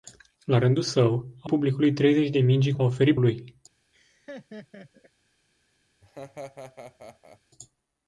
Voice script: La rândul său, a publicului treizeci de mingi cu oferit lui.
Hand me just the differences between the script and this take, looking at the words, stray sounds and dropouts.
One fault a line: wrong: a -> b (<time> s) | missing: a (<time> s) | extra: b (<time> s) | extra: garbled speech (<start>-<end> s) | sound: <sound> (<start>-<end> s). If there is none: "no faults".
sound: laugh (3.9-5.1 s)
sound: laugh (6.0-7.4 s)